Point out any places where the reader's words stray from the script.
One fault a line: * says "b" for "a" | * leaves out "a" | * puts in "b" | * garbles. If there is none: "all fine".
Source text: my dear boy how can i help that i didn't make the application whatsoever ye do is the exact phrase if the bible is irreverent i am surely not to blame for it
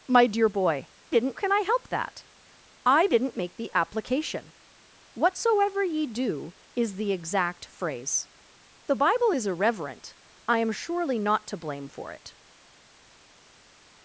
* says "didn't" for "how"
* leaves out "if"